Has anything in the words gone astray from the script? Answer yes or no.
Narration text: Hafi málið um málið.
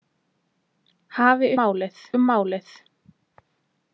no